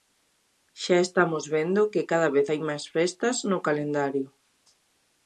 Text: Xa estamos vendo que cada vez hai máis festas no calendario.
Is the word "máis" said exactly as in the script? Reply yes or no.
yes